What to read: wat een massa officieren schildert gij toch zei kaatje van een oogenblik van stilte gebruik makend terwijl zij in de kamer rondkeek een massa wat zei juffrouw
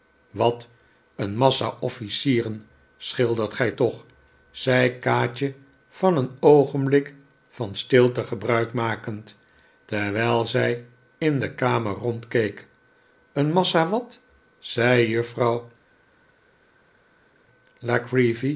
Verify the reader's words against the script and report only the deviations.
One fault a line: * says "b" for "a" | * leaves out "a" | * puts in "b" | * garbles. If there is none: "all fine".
all fine